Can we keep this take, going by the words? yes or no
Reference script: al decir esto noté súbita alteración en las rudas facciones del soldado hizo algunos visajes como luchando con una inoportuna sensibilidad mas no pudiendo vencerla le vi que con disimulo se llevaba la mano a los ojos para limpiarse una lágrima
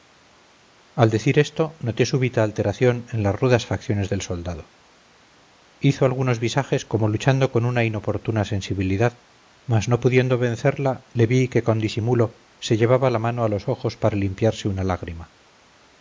yes